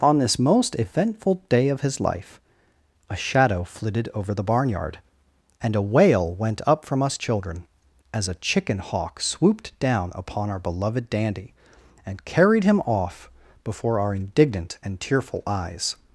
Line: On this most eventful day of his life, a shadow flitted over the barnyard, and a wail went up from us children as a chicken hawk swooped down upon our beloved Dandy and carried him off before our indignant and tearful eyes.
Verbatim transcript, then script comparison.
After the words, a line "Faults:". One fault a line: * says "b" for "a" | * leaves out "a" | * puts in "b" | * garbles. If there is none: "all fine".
On this most eventful day of his life, a shadow flitted over the barnyard, and a wail went up from us children as a chicken hawk swooped down upon our beloved Dandy and carried him off before our indignant and tearful eyes.
Faults:
all fine